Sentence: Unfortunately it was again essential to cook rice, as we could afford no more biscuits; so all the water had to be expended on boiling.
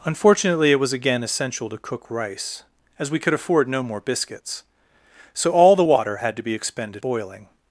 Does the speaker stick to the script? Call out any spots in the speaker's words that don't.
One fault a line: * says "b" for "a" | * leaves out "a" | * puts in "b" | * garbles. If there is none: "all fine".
* leaves out "on"